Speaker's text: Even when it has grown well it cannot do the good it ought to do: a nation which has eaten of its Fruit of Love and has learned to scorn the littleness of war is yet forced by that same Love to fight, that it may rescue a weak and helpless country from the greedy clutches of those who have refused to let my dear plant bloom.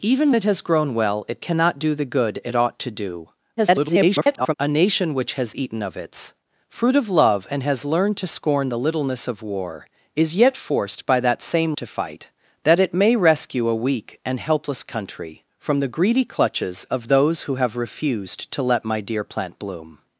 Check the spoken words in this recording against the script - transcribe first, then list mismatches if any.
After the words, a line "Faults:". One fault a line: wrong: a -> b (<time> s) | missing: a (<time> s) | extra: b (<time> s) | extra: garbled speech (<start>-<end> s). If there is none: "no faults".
Even it has grown well it cannot do the good it ought to do: [garbled] a nation which has eaten of its Fruit of Love and has learned to scorn the littleness of war is yet forced by that same To fight, that it may rescue a weak and helpless country from the greedy clutches of those who have refused to let my dear plant bloom.
Faults:
missing: when (0.3 s)
extra: garbled speech (3.6-4.5 s)
missing: Love (11.8 s)